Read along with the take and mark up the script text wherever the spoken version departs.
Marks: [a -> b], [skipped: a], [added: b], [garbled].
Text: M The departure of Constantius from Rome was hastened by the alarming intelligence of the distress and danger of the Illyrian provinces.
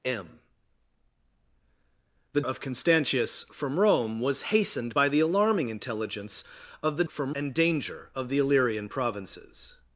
M The [skipped: departure] of Constantius from Rome was hastened by the alarming intelligence of the [distress -> from] and danger of the Illyrian provinces.